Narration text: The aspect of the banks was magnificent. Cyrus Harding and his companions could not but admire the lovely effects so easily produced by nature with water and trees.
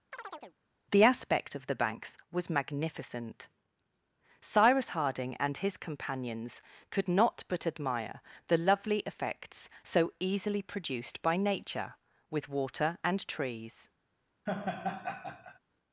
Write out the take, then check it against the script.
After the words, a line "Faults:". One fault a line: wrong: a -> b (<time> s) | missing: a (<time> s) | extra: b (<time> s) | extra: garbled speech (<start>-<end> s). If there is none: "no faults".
The aspect of the banks was magnificent. Cyrus Harding and his companions could not but admire the lovely effects so easily produced by nature with water and trees.
Faults:
no faults